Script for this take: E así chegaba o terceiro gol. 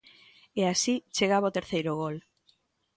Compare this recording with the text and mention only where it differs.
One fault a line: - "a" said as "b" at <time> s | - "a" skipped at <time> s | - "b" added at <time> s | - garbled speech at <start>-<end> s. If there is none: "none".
none